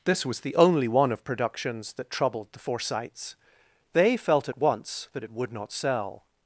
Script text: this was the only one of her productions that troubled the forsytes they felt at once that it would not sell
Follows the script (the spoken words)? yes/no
no